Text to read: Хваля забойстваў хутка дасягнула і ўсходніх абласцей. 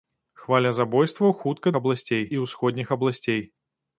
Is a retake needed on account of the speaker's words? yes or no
yes